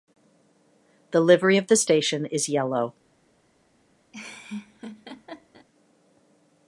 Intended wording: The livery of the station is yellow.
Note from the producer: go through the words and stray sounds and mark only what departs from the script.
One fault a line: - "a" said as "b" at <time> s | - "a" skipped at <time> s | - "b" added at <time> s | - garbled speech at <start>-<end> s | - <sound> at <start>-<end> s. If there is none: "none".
- laugh at 4.1-5.7 s